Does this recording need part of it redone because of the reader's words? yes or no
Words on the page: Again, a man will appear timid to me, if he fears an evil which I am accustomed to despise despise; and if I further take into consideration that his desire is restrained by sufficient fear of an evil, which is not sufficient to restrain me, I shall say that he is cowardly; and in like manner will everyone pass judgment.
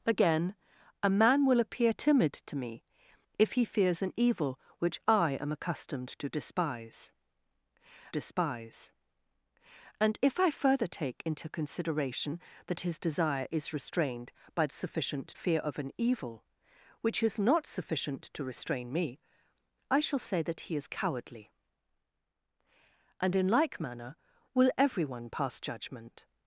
no